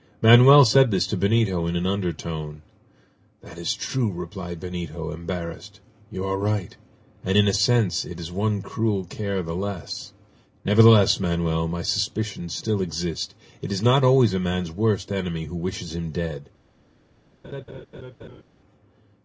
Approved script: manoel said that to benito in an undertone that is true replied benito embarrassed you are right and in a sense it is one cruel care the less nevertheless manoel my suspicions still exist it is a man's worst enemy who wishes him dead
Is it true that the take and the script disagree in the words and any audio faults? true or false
true